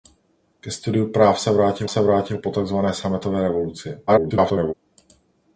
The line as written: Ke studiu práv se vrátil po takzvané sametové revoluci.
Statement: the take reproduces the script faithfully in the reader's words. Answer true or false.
false